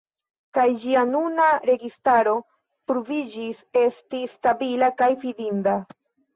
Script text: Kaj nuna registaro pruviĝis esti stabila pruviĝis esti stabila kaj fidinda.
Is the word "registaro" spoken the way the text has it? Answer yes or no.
yes